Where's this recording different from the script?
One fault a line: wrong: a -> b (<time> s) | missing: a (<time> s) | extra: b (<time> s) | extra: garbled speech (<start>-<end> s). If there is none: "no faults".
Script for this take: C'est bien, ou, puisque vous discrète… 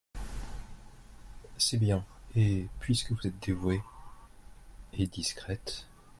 wrong: ou -> et (2.4 s)
extra: êtes dévouée et (3.2 s)